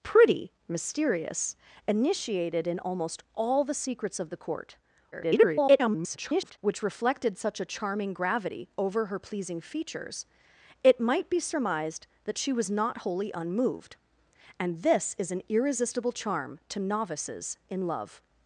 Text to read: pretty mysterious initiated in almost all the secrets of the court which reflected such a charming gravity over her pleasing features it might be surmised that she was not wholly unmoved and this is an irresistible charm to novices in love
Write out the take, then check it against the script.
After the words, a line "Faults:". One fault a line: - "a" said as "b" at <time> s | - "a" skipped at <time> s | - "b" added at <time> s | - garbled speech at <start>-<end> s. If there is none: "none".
pretty mysterious initiated in almost all the secrets of the court [garbled] which reflected such a charming gravity over her pleasing features it might be surmised that she was not wholly unmoved and this is an irresistible charm to novices in love
Faults:
- garbled speech at 5.1-6.6 s